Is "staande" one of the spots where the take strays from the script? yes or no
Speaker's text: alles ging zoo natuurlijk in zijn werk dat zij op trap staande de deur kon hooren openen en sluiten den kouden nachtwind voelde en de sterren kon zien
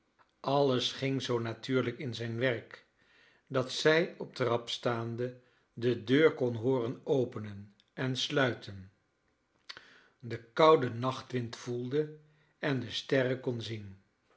no